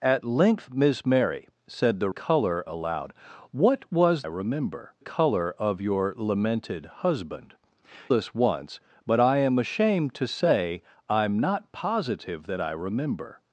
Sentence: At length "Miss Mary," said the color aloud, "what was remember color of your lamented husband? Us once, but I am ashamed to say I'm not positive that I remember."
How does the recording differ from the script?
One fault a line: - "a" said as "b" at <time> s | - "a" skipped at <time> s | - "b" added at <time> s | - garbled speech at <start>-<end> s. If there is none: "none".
none